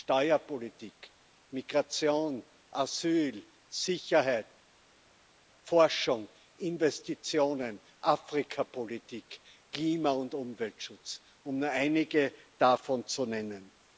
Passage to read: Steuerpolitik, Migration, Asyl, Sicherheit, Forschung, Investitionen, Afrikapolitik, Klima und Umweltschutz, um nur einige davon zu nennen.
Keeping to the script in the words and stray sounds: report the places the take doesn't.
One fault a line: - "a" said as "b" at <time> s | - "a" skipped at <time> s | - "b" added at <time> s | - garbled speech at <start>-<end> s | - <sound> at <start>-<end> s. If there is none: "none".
none